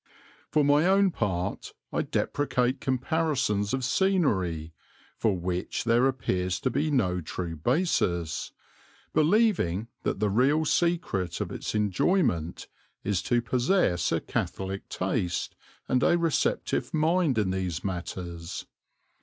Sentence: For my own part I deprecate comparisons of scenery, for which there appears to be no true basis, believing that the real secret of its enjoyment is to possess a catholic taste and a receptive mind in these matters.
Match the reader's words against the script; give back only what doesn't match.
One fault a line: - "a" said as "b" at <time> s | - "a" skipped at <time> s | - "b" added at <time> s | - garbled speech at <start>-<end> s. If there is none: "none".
none